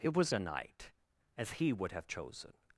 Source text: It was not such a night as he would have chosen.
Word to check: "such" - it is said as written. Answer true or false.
false